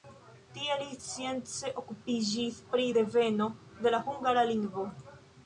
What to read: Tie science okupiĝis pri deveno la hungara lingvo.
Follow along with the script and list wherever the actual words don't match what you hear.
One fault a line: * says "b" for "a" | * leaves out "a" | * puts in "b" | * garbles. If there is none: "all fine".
* puts in "li"
* puts in "de"